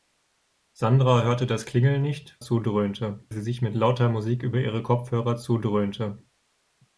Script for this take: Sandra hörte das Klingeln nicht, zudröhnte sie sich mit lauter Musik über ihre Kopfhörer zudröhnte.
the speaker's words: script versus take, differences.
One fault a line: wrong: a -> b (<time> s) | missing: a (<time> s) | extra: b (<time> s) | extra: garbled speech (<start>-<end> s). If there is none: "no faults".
no faults